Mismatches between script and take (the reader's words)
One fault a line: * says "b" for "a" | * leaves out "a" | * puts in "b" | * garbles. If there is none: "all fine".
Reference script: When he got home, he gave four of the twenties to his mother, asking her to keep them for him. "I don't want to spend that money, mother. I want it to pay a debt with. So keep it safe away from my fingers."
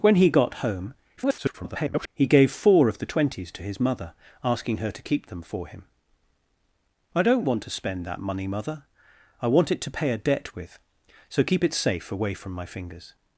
* garbles